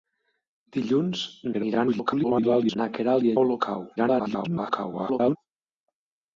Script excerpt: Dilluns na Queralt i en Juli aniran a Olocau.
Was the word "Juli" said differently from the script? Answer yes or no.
yes